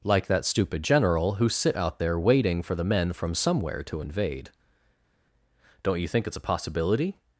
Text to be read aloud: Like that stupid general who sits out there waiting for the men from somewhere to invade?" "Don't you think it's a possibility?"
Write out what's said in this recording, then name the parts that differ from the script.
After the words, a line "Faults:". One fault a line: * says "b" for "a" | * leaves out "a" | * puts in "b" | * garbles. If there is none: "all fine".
Like that stupid general who sit out there waiting for the men from somewhere to invade?" "Don't you think it's a possibility?"
Faults:
* says "sit" for "sits"